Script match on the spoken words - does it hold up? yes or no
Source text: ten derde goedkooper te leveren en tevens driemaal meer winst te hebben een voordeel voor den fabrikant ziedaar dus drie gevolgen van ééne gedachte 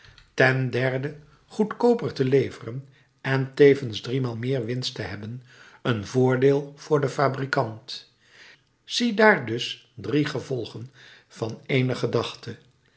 yes